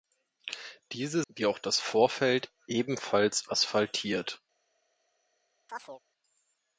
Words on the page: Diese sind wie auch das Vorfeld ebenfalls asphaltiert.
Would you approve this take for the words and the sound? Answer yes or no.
no